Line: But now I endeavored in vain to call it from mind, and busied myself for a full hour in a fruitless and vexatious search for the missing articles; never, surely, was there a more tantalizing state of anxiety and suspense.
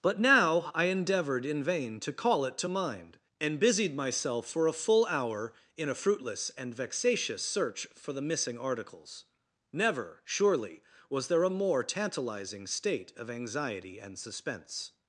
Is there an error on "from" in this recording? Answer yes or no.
yes